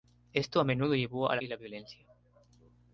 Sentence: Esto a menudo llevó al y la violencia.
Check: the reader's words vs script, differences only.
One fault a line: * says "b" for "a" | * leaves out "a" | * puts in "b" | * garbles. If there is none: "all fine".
all fine